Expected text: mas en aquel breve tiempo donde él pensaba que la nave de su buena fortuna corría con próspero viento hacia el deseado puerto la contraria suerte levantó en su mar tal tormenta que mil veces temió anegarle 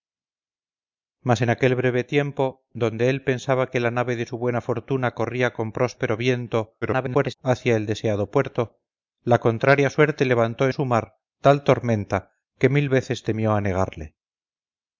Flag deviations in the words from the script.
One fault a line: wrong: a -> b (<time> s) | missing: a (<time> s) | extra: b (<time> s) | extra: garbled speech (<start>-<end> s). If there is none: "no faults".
extra: garbled speech (6.8-7.4 s)
missing: en (10.7 s)